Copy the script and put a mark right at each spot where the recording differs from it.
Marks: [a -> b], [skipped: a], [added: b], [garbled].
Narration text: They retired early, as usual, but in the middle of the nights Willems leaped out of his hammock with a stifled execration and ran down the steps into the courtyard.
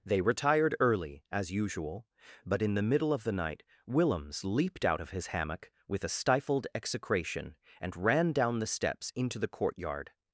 They retired early, as usual, but in the middle of the [nights -> night] Willems leaped out of his hammock with a stifled execration and ran down the steps into the courtyard.